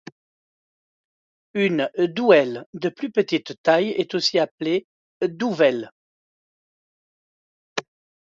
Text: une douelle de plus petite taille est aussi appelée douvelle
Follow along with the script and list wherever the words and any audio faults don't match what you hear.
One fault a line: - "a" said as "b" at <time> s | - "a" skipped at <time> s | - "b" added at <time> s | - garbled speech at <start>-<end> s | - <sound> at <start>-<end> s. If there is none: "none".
none